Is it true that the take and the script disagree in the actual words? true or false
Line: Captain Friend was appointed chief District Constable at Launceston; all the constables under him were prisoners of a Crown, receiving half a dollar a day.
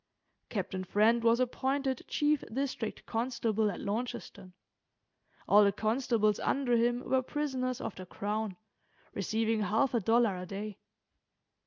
true